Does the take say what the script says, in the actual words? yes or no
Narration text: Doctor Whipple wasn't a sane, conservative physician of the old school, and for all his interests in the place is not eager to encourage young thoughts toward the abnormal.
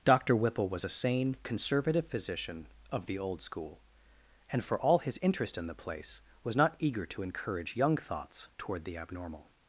no